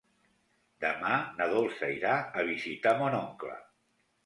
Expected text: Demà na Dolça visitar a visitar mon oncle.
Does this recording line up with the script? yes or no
no